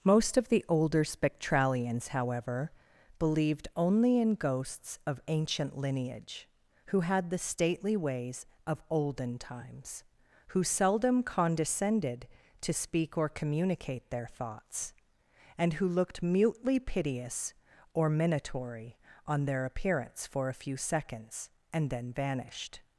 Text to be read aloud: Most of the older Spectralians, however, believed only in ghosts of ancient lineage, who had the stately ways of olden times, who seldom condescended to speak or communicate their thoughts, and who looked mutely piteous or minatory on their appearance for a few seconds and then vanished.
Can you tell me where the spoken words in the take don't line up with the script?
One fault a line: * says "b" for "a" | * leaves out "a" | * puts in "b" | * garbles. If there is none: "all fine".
all fine